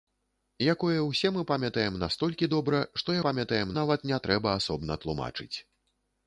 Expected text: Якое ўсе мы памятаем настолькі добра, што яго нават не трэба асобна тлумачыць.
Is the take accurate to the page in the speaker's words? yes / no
no